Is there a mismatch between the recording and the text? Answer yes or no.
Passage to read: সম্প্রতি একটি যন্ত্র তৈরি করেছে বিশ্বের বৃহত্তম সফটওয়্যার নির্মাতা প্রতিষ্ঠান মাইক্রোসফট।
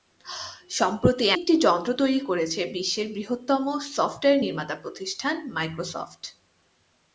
no